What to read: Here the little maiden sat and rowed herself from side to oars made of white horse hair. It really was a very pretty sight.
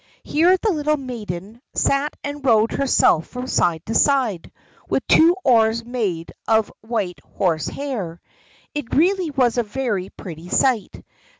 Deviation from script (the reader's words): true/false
true